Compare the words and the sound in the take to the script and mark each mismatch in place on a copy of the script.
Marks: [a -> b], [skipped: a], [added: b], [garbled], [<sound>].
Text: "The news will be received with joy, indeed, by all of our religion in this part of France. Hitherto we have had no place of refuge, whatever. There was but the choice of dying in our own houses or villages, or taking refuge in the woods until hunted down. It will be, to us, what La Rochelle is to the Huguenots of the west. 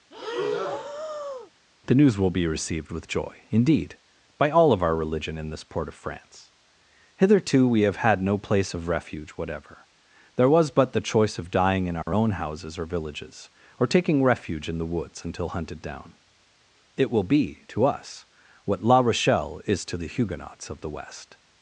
[breath] "The news will be received with joy, indeed, by all of our religion in this [part -> port] of France. Hitherto we have had no place of refuge, whatever. There was but the choice of dying in our [dropout] own houses or villages, or taking refuge in the woods until hunted down. It will be, to us, what La Rochelle is to the Huguenots of the west.